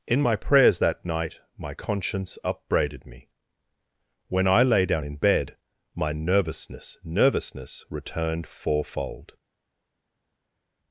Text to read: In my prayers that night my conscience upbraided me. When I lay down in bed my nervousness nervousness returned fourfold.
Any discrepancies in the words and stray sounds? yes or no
no